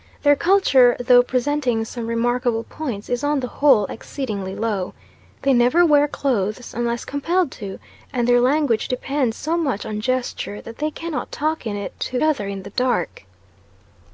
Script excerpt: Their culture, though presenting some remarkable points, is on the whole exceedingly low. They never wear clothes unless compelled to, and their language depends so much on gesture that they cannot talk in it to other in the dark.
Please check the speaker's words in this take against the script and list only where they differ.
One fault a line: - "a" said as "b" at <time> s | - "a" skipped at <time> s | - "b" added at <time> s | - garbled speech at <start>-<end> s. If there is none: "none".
none